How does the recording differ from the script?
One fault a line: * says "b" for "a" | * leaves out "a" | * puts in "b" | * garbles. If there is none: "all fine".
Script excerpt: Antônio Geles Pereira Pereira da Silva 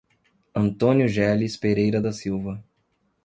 * leaves out "Pereira"